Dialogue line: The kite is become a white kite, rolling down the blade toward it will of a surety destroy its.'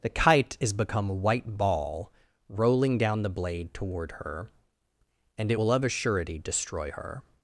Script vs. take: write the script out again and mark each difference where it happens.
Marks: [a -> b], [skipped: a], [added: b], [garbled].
The kite is become a white [kite, -> ball] rolling down the blade toward [added: her and] it will of a surety destroy [its.' -> her]